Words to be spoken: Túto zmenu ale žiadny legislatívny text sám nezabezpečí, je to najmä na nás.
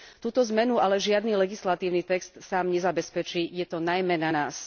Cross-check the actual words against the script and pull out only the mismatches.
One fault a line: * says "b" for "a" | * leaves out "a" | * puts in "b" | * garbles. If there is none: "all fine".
all fine